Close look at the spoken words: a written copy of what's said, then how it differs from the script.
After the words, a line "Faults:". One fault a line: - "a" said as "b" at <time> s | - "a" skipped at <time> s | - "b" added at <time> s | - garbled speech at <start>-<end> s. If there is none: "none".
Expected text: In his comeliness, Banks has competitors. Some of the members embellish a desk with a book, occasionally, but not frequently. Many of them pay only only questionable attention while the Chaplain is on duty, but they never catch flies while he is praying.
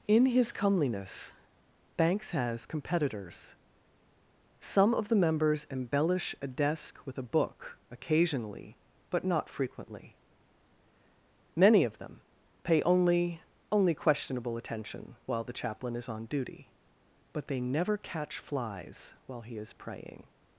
In his comeliness, Banks has competitors. Some of the members embellish a desk with a book, occasionally, but not frequently. Many of them pay only only questionable attention while the Chaplain is on duty, but they never catch flies while he is praying.
Faults:
none